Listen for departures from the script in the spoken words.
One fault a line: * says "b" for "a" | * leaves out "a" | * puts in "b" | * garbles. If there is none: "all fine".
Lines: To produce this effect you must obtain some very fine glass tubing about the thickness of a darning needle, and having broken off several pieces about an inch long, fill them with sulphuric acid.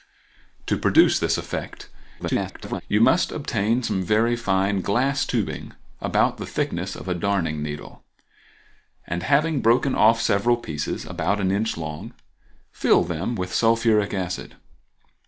* garbles